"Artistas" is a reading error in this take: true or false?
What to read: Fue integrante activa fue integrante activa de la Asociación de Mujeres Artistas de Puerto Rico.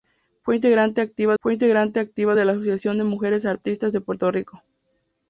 false